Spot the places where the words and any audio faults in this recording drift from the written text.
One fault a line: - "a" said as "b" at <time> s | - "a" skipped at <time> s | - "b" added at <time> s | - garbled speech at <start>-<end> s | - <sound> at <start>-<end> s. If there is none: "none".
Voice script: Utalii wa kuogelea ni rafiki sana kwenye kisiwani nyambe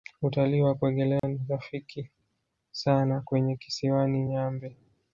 - dropout at 1.2-1.2 s